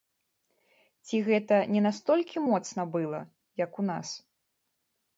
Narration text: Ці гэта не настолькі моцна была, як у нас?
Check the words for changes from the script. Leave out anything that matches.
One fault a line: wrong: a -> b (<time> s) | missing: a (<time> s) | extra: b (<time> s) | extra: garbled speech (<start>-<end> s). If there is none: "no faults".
no faults